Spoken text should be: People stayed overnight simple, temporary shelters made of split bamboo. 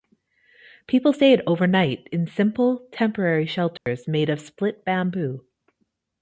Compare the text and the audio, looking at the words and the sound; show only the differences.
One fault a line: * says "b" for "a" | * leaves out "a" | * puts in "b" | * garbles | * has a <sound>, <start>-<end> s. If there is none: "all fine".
* puts in "in"
* has a dropout, 3.8-3.9 s